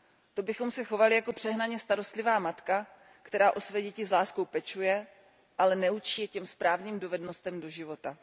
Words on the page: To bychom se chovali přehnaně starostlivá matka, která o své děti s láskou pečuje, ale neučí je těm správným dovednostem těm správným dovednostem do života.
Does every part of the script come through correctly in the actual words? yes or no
no